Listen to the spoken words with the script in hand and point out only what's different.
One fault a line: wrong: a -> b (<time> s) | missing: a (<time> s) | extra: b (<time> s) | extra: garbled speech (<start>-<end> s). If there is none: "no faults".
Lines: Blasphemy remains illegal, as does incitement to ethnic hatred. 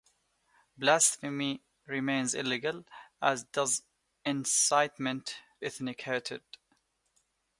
missing: to (5.4 s)